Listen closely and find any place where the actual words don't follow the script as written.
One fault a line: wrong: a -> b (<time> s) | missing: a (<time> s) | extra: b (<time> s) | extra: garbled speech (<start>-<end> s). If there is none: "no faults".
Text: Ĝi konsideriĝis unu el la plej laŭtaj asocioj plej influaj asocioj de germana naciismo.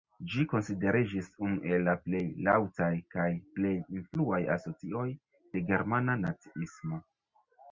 wrong: asocioj -> kaj (3.2 s)